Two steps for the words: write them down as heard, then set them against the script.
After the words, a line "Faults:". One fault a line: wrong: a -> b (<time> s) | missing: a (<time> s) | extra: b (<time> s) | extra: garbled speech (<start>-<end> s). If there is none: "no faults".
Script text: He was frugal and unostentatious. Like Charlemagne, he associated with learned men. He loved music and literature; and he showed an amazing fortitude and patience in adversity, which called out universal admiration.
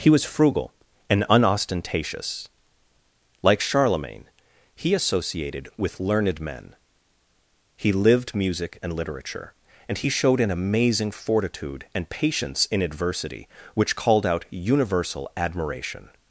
He was frugal and unostentatious. Like Charlemagne, he associated with learned men. He lived music and literature; and he showed an amazing fortitude and patience in adversity, which called out universal admiration.
Faults:
wrong: loved -> lived (7.9 s)